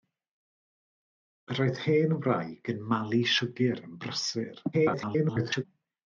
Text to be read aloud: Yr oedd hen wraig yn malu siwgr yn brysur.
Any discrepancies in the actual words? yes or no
yes